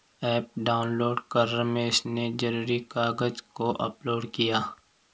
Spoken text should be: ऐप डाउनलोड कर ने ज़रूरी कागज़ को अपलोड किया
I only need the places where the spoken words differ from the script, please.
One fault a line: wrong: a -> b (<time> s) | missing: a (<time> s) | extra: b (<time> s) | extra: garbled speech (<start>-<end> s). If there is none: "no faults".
extra: रमेश (1.5 s)